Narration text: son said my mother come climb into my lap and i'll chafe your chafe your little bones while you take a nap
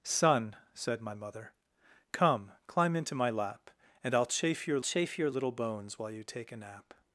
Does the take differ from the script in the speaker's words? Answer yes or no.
no